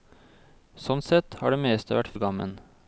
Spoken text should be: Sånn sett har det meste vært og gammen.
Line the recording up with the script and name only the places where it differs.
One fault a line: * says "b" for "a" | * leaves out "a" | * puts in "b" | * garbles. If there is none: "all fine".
all fine